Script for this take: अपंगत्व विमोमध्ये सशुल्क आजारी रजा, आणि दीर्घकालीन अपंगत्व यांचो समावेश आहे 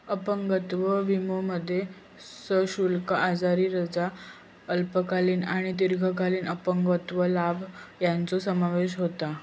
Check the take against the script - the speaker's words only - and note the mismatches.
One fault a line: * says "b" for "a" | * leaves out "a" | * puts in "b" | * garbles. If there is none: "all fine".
* puts in "अल्पकालीन"
* puts in "लाभ"
* says "होता" for "आहे"